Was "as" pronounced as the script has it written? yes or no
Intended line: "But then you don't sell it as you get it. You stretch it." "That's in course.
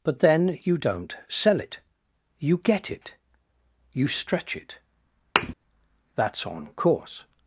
no